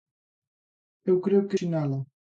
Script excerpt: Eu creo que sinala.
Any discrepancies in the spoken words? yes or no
no